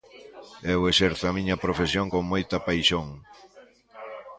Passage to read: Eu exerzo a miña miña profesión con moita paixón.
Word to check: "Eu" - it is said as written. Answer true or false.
true